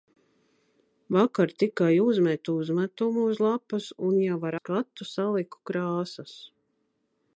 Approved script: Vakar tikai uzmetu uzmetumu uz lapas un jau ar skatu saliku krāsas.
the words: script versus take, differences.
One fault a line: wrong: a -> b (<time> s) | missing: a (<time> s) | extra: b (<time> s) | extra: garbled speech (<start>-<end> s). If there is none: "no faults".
no faults